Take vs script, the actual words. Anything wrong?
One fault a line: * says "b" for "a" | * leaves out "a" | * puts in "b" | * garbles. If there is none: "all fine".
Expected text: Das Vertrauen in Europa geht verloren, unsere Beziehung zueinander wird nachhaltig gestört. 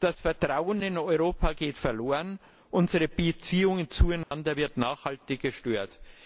all fine